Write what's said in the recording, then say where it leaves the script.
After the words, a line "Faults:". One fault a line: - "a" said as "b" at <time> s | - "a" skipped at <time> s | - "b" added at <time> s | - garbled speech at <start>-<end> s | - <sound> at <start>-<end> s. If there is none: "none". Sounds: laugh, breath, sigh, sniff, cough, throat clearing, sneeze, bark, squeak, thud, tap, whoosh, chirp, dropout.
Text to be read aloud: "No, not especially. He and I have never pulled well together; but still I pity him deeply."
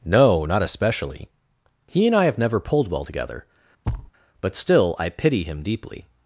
"No, not especially. He and I have never pulled well together; but still I pity him deeply."
Faults:
- thud at 3.8-4.1 s